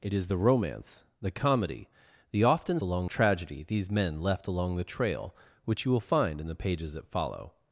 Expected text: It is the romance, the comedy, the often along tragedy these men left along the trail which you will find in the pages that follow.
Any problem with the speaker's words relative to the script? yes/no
no